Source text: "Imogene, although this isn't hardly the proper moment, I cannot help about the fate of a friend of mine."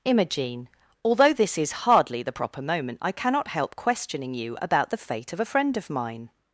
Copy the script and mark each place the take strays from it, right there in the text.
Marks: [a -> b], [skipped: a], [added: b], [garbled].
"Imogene, although this [isn't -> is] hardly the proper moment, I cannot help [added: questioning you] about the fate of a friend of mine."